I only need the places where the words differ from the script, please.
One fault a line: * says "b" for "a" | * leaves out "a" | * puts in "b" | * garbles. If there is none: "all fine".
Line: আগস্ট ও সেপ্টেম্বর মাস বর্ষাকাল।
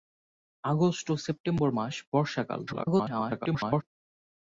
* garbles